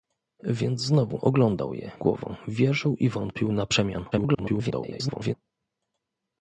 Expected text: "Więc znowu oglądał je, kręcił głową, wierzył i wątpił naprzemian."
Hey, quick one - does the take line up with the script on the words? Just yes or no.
no